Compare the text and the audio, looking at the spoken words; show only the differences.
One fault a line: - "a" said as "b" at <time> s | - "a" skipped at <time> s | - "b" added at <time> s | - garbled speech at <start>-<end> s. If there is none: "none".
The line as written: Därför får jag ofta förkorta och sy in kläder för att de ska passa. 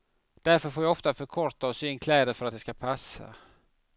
none